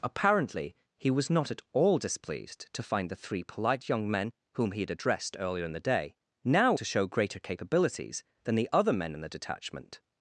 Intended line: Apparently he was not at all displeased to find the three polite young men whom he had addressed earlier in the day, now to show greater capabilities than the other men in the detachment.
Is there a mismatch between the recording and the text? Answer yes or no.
no